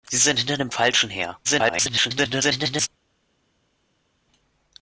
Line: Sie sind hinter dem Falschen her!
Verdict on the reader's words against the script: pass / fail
fail